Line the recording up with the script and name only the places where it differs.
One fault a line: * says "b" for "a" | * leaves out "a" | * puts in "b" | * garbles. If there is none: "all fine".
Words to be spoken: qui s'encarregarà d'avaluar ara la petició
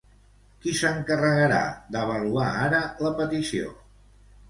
all fine